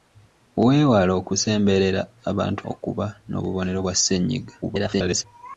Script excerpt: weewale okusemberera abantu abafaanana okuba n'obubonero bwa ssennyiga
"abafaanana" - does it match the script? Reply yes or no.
no